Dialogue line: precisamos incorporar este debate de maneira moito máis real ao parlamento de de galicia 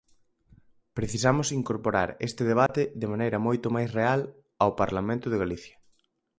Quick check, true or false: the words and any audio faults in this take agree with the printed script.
false